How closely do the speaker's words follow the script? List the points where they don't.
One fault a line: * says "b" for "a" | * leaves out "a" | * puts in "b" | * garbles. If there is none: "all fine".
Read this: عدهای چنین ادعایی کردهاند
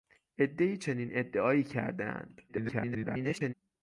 * garbles